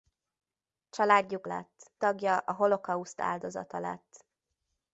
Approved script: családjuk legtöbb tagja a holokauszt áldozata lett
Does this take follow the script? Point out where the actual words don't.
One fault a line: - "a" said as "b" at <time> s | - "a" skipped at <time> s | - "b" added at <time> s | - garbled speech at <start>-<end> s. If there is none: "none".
- "legtöbb" said as "lett" at 1.4 s